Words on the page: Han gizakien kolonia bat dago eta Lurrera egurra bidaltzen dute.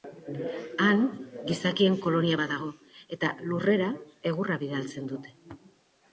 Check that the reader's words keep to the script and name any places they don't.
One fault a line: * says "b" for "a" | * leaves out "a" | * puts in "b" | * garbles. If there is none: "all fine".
all fine